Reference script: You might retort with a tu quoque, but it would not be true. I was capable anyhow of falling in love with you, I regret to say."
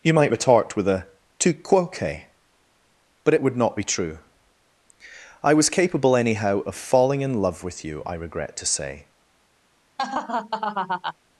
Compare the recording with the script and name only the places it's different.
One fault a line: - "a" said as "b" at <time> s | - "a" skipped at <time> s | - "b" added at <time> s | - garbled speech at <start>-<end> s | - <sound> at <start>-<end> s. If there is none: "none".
- laugh at 10.0-11.1 s